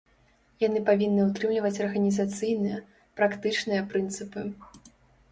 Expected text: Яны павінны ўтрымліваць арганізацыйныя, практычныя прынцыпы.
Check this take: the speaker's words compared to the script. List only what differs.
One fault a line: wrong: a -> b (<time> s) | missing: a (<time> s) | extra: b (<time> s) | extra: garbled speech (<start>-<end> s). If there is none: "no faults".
no faults